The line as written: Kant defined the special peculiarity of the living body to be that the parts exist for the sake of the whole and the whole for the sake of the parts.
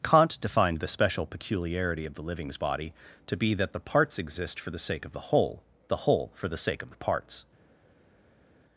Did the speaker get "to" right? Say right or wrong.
right